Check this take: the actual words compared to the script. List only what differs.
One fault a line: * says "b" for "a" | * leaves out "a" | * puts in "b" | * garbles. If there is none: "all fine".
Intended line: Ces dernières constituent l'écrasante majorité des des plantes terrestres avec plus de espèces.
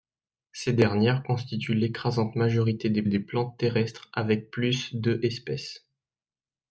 all fine